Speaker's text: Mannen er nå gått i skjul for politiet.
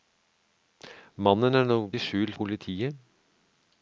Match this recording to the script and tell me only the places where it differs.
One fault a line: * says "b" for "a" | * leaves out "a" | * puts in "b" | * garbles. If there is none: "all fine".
* leaves out "gått"
* leaves out "for"